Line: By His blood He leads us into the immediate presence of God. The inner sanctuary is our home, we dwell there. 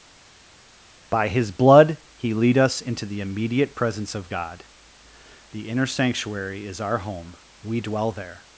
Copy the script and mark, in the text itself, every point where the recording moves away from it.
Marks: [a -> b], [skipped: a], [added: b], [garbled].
By His blood He [leads -> lead] us into the immediate presence of God. The inner sanctuary is our home, we dwell there.